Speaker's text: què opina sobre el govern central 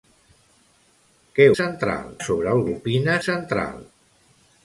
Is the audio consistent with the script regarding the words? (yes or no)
no